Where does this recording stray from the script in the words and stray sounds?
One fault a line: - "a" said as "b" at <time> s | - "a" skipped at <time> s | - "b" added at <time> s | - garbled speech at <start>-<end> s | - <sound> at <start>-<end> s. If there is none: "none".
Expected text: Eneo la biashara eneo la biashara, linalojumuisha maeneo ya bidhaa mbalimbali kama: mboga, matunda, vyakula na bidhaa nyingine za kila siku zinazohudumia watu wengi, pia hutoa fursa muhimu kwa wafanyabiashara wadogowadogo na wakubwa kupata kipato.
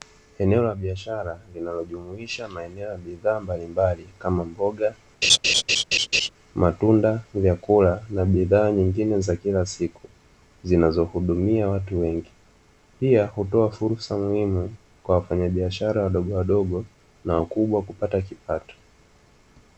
- "eneo la biashara" skipped at 1.4 s
- laugh at 5.2-6.3 s